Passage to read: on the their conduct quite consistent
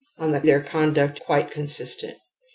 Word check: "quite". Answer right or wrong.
right